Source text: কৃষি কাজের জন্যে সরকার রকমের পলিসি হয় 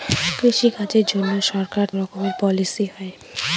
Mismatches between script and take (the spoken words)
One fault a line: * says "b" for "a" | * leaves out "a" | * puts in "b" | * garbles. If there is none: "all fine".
all fine